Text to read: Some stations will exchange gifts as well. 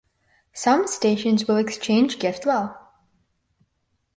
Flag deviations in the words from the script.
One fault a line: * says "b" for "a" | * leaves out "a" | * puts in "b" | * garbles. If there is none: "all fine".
* leaves out "as"